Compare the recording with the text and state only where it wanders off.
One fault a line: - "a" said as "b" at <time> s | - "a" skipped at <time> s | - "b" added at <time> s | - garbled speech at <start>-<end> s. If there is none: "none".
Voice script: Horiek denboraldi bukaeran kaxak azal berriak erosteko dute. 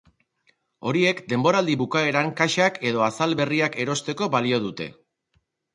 - "edo" added at 2.9 s
- "balio" added at 4.4 s